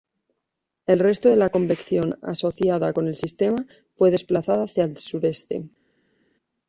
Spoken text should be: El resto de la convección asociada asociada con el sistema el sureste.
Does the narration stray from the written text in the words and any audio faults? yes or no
yes